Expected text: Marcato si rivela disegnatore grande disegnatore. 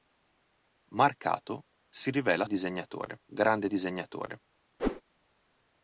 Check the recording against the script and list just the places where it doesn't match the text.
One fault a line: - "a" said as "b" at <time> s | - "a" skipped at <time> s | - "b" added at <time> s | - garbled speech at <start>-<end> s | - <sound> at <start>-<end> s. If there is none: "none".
- whoosh at 4.8-5.0 s